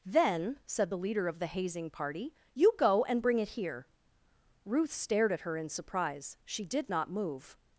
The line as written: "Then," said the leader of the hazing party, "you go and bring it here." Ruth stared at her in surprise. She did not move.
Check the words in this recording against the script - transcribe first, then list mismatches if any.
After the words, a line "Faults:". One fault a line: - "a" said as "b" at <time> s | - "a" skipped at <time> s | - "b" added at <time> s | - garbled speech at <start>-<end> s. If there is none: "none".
"Then," said the leader of the hazing party, "you go and bring it here." Ruth stared at her in surprise. She did not move.
Faults:
none